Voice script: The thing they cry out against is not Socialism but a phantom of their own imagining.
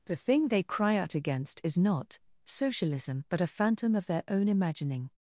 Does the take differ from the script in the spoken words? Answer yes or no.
no